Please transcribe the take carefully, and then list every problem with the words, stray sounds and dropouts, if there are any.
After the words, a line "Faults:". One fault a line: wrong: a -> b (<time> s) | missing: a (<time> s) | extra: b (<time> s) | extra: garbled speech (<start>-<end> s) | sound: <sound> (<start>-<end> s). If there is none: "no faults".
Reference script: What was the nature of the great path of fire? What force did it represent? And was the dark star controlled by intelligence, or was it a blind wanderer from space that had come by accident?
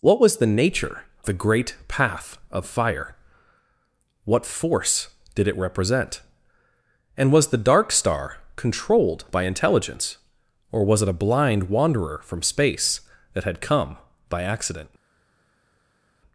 What was the nature the great path of fire? What force did it represent? And was the dark star controlled by intelligence, or was it a blind wanderer from space that had come by accident?
Faults:
missing: of (1.1 s)